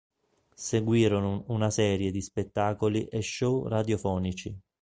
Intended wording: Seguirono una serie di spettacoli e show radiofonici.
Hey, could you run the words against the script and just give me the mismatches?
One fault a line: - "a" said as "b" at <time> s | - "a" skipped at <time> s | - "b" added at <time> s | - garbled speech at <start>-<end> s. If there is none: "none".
none